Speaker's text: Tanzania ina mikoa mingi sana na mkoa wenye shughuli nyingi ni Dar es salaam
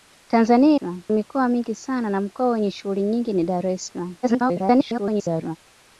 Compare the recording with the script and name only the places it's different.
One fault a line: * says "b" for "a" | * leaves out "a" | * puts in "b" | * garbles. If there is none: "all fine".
* says "salaam" for "ina"
* garbles